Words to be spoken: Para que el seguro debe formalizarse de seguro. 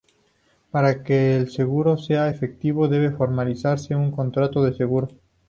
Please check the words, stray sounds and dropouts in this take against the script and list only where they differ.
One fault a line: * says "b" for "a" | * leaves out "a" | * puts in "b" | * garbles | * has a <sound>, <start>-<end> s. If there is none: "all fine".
* puts in "sea efectivo"
* puts in "un contrato"